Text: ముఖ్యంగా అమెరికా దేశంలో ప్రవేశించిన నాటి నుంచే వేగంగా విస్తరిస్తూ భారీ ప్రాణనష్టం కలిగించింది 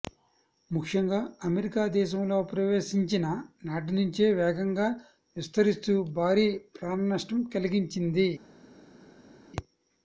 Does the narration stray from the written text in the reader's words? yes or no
no